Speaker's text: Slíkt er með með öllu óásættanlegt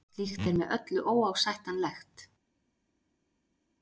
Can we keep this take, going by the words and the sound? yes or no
no